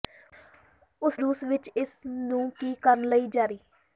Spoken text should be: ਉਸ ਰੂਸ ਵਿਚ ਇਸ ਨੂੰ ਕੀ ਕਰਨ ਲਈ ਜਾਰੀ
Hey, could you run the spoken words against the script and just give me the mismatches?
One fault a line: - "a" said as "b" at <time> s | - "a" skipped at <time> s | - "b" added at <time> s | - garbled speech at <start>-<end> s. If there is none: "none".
none